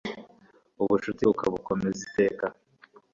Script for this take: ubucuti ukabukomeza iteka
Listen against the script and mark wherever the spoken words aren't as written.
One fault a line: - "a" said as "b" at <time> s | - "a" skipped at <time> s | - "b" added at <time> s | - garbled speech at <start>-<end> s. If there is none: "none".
none